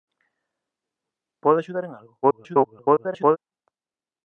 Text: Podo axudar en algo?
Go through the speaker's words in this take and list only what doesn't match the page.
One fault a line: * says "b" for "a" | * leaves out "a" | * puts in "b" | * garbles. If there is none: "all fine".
* garbles